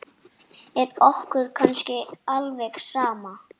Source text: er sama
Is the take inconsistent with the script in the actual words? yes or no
yes